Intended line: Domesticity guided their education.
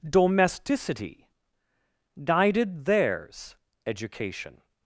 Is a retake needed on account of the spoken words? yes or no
yes